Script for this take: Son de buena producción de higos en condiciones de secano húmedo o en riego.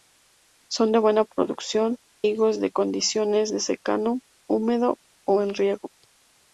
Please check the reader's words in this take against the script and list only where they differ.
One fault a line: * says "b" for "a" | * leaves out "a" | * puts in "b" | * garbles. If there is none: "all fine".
* leaves out "de"